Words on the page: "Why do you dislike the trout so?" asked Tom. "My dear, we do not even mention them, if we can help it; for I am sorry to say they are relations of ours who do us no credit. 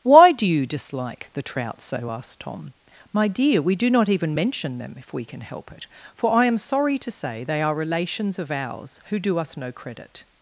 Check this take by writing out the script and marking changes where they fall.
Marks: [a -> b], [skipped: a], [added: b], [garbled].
"Why do you dislike the trout so?" asked Tom. "My dear, we do not even mention them, if we can help it; for I am sorry to say they are relations of ours who do us no credit.